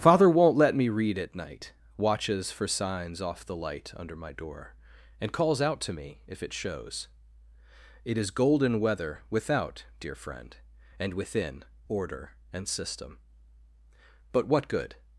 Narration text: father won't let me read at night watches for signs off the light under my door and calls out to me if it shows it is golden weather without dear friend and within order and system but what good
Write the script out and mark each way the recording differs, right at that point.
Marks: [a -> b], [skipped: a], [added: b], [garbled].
father won't let me read at night watches for signs off the light under my door and calls out to me if it shows it is golden weather without dear friend and within order and system but what good